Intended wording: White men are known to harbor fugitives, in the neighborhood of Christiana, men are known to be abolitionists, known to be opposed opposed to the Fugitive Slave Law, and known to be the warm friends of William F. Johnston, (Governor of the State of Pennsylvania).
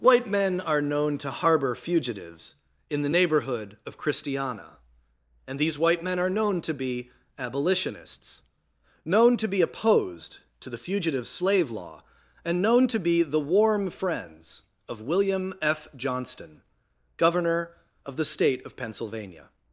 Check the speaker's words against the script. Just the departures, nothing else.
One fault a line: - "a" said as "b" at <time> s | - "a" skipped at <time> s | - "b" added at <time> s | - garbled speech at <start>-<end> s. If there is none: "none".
- "and these white" added at 5.4 s
- "opposed" skipped at 10.4 s